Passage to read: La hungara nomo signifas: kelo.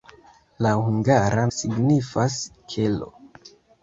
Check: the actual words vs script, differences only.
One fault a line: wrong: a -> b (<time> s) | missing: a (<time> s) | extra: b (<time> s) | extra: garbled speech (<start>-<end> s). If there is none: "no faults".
missing: nomo (1.4 s)